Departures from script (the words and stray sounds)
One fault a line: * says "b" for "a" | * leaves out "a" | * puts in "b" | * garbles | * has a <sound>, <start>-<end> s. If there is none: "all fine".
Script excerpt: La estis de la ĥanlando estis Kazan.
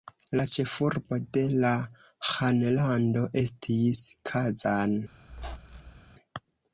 * says "ĉefurbo" for "estis"
* has a squeak, 5.3-6.0 s